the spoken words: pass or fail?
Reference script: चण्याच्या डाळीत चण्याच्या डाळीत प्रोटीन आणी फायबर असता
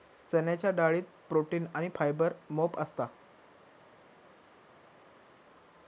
fail